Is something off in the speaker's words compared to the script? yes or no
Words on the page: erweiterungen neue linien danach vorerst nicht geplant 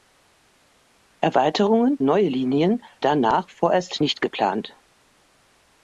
no